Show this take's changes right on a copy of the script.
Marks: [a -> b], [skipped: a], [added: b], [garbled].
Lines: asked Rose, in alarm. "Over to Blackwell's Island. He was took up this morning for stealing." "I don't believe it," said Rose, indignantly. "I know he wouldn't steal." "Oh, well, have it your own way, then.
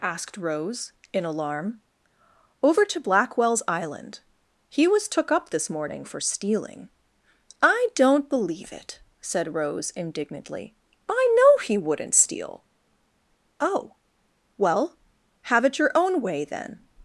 asked Rose, in alarm. "Over to Blackwell's Island. He was took up this morning for stealing." "I don't believe it," said Rose, indignantly. "I know he wouldn't steal." "Oh, well, have it your own way, then.